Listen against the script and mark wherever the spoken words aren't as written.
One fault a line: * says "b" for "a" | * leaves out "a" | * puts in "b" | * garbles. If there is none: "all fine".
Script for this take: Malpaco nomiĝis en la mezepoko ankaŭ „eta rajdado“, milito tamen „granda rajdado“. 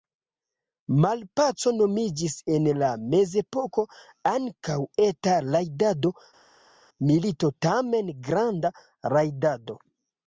all fine